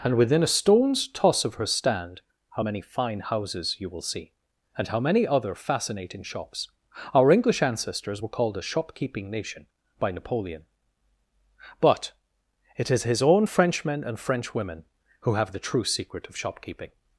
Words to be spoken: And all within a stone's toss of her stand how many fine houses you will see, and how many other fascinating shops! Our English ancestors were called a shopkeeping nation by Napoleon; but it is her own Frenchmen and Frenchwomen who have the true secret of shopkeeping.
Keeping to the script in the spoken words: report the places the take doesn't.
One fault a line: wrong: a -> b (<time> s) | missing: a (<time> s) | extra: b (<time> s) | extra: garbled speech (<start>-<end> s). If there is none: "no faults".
missing: all (0.2 s)
wrong: her -> his (13.1 s)